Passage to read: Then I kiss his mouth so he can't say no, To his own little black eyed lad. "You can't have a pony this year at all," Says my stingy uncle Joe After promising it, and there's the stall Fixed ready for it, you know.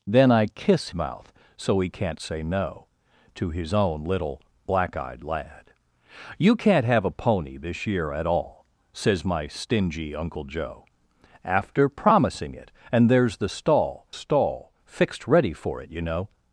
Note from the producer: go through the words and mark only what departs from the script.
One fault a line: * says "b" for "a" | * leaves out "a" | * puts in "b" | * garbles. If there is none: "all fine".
* leaves out "his"
* puts in "stall"